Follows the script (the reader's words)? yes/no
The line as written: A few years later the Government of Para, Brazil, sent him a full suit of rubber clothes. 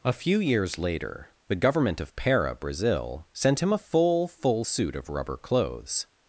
no